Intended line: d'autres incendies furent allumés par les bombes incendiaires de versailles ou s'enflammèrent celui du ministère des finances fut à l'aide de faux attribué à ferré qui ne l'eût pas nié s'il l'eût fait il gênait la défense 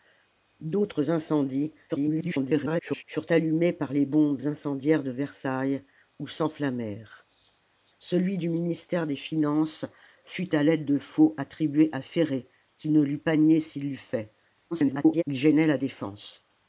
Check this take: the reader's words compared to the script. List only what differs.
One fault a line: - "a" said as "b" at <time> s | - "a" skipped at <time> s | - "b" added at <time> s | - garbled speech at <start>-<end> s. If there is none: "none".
- garbled speech at 1.9-3.0 s
- garbled speech at 14.7-15.2 s